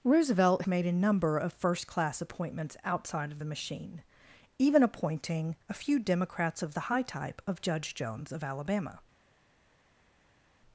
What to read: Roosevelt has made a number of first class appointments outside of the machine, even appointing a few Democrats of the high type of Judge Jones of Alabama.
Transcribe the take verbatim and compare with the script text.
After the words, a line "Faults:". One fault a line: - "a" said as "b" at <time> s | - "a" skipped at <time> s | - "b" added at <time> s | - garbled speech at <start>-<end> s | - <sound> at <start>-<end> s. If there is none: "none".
Roosevelt made a number of first class appointments outside of the machine, even appointing a few Democrats of the high type of Judge Jones of Alabama.
Faults:
- "has" skipped at 0.6 s